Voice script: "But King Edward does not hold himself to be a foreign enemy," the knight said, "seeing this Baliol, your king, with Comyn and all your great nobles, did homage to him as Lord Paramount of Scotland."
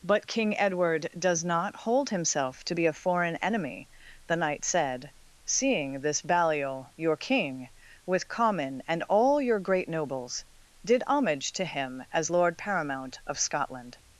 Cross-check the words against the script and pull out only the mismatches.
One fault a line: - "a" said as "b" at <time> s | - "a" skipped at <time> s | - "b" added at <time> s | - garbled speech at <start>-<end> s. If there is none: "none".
none